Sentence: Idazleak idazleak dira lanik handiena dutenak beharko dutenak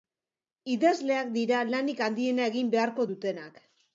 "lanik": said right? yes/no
yes